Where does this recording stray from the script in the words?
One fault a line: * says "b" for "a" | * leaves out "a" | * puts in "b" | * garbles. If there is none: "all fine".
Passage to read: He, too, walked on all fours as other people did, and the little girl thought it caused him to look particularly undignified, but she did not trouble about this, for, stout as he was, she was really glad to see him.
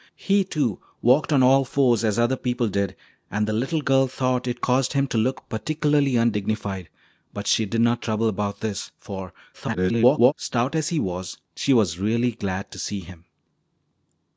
* garbles